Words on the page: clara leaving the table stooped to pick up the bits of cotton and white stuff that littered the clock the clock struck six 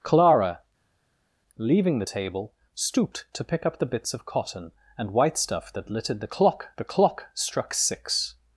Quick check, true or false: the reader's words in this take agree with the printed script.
true